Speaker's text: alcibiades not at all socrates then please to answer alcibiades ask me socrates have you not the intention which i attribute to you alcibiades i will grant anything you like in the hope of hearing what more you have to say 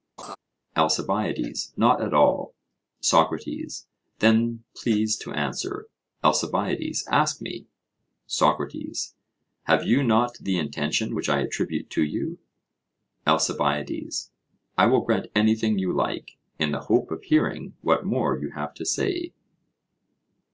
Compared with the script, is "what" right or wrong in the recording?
right